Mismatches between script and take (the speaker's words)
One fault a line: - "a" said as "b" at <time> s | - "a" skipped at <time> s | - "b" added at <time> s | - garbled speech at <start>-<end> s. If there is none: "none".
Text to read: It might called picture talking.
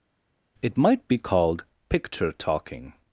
- "be" added at 1.1 s